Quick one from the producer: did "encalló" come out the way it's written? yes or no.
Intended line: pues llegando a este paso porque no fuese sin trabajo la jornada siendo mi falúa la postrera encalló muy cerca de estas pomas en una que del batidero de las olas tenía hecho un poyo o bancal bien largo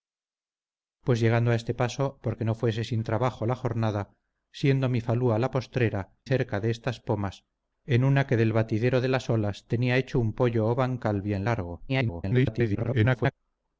no